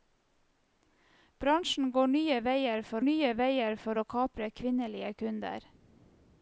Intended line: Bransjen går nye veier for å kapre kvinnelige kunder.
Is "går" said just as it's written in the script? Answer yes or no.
yes